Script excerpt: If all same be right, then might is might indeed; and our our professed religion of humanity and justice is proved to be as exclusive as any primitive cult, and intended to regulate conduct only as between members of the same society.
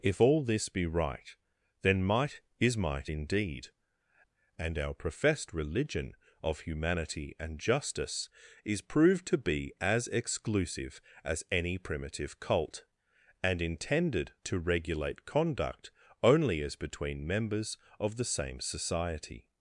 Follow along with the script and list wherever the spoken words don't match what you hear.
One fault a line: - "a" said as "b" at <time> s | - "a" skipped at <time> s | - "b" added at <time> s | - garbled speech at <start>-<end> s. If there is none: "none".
- "same" said as "this" at 0.4 s
- "our" skipped at 4.9 s